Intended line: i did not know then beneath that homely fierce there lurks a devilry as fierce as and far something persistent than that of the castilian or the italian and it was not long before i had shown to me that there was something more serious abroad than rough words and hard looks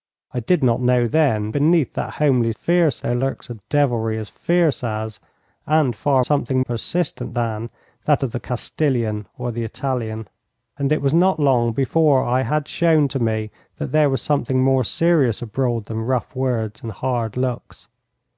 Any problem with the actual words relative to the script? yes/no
no